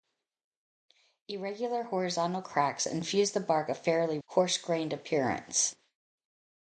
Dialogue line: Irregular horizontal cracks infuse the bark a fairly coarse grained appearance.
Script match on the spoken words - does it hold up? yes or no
yes